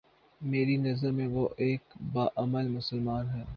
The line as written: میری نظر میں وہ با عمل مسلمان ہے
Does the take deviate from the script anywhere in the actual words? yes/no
yes